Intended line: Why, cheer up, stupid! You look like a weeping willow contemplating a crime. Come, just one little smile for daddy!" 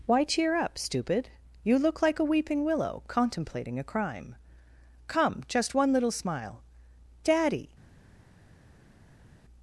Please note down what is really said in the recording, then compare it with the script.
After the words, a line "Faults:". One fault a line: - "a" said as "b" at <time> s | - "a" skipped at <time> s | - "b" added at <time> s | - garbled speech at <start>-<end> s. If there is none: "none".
Why, cheer up, stupid! You look like a weeping willow contemplating a crime. Come, just one little smile daddy!"
Faults:
- "for" skipped at 6.6 s